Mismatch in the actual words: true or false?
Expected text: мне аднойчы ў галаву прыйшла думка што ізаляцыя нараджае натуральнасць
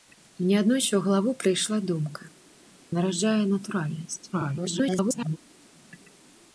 true